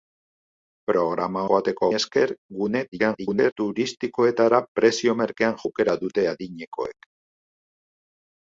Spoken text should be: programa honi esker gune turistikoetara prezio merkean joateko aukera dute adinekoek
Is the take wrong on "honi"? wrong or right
wrong